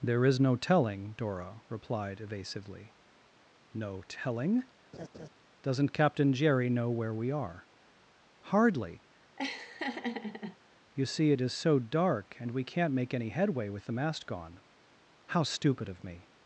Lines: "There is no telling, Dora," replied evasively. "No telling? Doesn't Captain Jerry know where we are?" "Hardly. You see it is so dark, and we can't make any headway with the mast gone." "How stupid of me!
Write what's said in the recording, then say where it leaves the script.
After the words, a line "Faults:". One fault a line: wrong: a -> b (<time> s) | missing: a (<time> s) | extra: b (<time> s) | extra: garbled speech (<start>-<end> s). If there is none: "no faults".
"There is no telling, Dora," replied evasively. "No telling? Doesn't Captain Jerry know where we are?" "Hardly. You see it is so dark, and we can't make any headway with the mast gone." "How stupid of me!
Faults:
no faults